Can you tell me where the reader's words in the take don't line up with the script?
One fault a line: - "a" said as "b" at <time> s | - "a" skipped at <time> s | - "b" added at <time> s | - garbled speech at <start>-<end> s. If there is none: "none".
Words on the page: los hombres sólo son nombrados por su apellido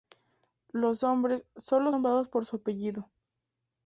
- "son" skipped at 1.9 s